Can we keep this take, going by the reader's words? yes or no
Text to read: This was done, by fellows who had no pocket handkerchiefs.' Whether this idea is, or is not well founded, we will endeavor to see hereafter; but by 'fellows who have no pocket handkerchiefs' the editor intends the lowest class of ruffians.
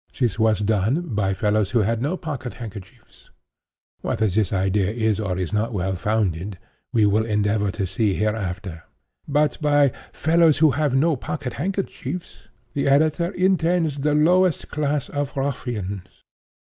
yes